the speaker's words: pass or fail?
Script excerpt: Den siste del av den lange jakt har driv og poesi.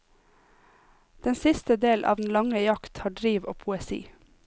pass